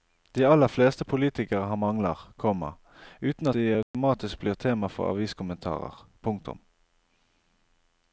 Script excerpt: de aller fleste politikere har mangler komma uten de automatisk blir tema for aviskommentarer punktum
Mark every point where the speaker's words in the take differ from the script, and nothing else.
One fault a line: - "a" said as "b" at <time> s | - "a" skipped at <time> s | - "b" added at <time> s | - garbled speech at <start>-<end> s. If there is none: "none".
none